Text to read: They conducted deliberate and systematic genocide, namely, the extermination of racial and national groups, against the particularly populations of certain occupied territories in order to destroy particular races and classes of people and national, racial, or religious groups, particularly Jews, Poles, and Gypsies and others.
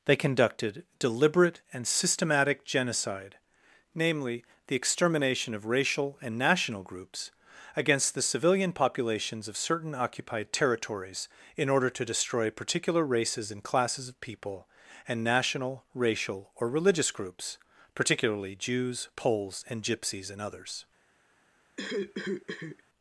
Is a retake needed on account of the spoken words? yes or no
yes